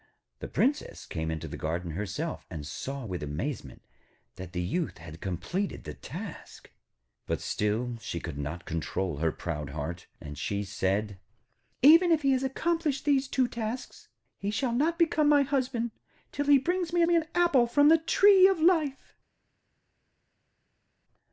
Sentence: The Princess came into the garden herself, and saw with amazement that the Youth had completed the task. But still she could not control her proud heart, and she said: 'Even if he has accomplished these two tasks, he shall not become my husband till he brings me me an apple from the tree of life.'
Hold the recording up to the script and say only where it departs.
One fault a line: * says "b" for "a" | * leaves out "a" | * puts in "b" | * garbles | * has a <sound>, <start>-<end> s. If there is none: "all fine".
all fine